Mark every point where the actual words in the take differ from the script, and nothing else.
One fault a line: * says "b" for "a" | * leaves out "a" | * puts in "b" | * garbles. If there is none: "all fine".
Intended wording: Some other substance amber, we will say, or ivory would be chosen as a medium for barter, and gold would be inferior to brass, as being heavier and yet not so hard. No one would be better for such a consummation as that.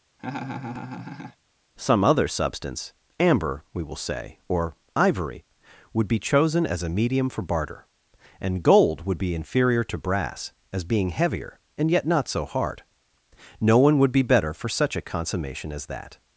all fine